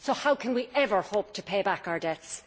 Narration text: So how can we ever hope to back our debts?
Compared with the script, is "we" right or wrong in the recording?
right